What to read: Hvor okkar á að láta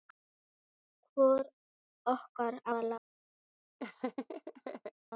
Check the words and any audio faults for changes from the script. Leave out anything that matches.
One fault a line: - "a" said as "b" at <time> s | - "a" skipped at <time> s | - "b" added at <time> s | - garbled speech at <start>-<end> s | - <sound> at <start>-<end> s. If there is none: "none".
- "að" skipped at 2.8 s
- laugh at 3.8-4.9 s